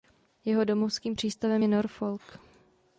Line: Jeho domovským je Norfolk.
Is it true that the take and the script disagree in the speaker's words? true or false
true